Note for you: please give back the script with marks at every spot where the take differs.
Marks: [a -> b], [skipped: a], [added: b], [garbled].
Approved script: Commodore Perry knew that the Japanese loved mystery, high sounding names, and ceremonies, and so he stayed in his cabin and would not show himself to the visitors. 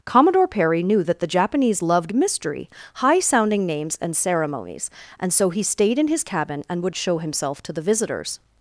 Commodore Perry knew that the Japanese loved mystery, high sounding names, and ceremonies, and so he stayed in his cabin and would [skipped: not] show himself to the visitors.